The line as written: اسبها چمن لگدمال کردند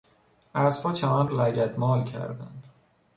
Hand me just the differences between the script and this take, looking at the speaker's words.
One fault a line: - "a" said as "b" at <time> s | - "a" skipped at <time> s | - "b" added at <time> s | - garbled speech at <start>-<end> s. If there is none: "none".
none